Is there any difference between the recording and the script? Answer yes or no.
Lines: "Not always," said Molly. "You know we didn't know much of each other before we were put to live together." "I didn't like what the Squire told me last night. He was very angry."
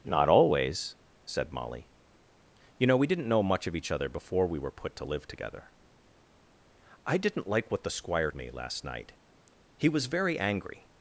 yes